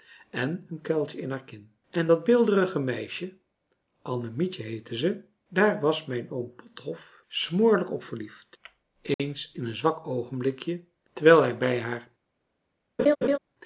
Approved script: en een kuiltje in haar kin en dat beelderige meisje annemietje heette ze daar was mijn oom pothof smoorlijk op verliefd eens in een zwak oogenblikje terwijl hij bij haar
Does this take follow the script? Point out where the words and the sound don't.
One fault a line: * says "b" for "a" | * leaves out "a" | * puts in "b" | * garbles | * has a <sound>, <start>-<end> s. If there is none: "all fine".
* has a dropout, 9.1-9.2 s
* has a laugh, 13.0-13.4 s